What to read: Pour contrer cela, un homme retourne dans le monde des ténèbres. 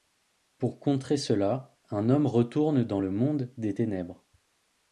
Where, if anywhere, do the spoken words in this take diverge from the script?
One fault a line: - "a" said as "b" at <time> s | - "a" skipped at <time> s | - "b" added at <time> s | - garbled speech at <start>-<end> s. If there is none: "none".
none